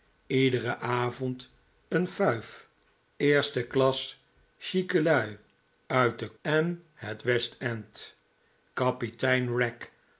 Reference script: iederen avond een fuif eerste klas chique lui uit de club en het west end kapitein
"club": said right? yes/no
no